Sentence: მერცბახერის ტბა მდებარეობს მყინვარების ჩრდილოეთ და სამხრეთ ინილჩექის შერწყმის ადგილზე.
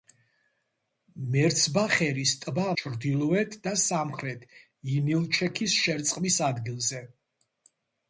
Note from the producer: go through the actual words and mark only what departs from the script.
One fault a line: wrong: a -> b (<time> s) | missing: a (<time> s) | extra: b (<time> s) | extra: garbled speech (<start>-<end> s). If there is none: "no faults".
missing: მდებარეობს მყინვარების (2.6 s)